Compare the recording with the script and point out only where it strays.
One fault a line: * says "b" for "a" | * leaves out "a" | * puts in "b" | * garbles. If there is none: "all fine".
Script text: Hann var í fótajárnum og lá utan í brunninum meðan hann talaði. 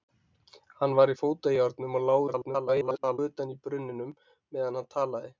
* garbles